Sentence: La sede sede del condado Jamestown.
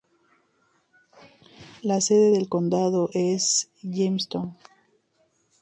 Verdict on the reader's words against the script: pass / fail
fail